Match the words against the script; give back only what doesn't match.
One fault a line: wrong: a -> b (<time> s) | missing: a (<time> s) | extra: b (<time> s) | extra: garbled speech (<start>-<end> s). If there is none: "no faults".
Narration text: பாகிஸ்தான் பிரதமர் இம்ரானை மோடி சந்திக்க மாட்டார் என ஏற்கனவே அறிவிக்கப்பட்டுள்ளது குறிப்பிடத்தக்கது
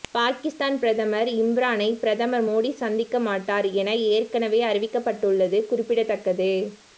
extra: பிரதமர் (2.0 s)